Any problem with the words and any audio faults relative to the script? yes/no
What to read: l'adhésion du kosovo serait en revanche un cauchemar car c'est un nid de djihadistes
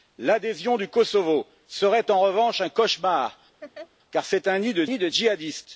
yes